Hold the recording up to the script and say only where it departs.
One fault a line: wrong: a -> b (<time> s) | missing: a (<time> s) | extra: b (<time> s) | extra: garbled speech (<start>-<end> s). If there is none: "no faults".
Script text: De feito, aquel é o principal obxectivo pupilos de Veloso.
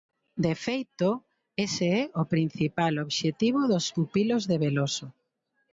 wrong: aquel -> ese (1.6 s)
extra: dos (3.7 s)